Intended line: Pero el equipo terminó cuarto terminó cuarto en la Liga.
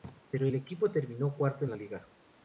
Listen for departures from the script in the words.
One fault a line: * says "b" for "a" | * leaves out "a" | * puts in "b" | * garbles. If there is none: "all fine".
* leaves out "terminó cuarto"